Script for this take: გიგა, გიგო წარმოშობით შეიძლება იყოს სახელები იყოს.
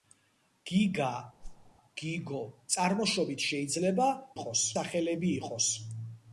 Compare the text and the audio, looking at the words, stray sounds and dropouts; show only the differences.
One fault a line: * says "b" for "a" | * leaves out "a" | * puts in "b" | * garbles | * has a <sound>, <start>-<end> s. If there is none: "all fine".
* has a whoosh, 1.4-1.7 s